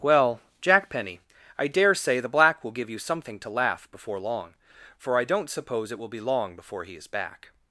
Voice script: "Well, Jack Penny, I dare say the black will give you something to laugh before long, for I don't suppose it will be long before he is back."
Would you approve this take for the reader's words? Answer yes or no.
yes